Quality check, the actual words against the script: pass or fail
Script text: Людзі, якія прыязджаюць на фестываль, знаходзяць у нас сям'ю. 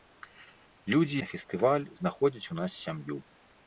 fail